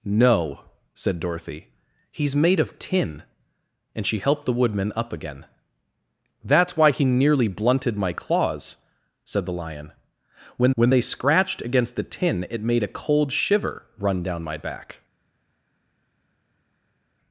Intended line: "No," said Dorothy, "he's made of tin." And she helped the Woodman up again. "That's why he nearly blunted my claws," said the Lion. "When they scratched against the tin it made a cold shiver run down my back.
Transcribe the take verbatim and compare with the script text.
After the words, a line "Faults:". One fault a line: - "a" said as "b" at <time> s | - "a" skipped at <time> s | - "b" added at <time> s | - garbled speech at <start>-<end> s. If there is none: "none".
"No," said Dorothy, "he's made of tin." And she helped the Woodman up again. "That's why he nearly blunted my claws," said the Lion. "When when they scratched against the tin it made a cold shiver run down my back.
Faults:
- "when" added at 10.7 s